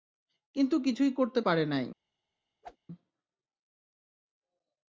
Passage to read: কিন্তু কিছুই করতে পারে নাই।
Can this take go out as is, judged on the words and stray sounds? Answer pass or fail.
fail